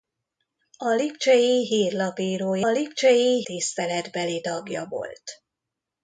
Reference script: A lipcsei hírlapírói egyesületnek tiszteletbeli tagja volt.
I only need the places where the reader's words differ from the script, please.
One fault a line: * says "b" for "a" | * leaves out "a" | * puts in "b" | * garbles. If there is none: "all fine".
* says "lipcsei" for "egyesületnek"